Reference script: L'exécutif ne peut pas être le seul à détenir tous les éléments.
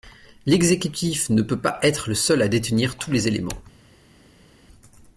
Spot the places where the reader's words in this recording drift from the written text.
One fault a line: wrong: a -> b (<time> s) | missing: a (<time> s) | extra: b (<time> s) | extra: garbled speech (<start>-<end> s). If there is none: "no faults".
no faults